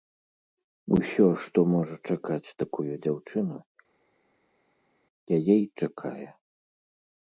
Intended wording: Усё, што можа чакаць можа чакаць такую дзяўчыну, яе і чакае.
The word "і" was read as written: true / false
true